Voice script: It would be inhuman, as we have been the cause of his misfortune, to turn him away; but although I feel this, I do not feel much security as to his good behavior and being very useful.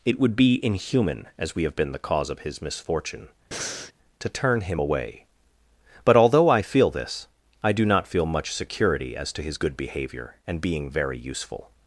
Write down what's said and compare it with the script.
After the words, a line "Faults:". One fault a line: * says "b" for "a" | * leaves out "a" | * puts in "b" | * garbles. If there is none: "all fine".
It would be inhuman, as we have been the cause of his misfortune, to turn him away; but although I feel this, I do not feel much security as to his good behavior and being very useful.
Faults:
all fine